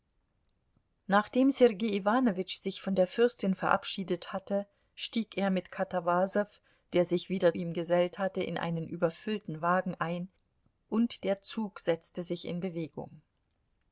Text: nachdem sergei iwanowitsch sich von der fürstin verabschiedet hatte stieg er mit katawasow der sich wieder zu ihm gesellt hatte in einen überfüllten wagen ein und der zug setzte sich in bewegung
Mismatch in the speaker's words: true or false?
true